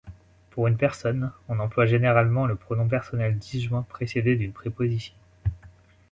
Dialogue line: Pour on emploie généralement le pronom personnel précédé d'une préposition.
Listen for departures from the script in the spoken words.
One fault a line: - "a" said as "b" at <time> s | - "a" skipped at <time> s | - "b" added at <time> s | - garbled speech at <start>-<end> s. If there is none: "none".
- "une personne" added at 0.7 s
- "disjoint" added at 3.4 s